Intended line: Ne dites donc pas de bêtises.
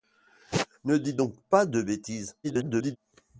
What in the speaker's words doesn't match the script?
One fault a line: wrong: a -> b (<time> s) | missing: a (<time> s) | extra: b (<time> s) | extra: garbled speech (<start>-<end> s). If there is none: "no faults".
extra: garbled speech (2.4-3.0 s)